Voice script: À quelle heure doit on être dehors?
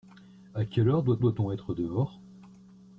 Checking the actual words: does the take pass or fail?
fail